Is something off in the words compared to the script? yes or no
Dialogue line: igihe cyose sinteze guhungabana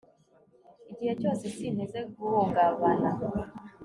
no